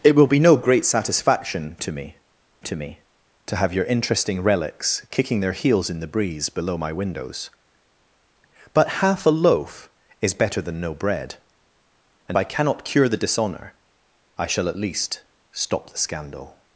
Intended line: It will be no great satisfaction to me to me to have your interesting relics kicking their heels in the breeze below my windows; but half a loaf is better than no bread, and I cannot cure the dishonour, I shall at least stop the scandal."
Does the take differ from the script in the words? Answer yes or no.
no